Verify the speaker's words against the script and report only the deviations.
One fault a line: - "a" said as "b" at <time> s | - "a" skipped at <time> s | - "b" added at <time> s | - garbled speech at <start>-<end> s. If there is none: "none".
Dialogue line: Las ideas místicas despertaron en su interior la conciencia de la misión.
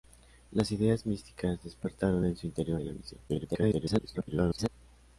- "la conciencia" skipped at 2.8 s
- garbled speech at 3.3-4.7 s